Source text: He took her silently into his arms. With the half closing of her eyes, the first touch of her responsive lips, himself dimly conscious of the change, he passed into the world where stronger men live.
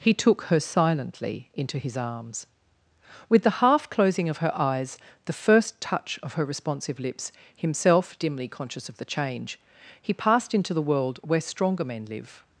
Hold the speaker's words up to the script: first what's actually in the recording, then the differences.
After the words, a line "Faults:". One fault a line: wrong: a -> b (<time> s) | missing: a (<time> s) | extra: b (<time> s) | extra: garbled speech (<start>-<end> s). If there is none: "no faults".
He took her silently into his arms. With the half closing of her eyes, the first touch of her responsive lips, himself dimly conscious of the change, he passed into the world where stronger men live.
Faults:
no faults